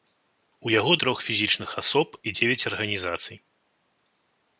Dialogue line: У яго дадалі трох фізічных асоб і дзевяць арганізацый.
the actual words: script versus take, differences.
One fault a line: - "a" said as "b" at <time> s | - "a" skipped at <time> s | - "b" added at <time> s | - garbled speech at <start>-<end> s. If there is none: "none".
- "дадалі" skipped at 0.9 s